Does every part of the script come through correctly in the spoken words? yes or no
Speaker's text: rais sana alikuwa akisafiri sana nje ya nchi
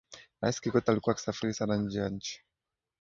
no